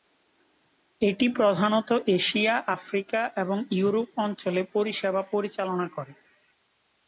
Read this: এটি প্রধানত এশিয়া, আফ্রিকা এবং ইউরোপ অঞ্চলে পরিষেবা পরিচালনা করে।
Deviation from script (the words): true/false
false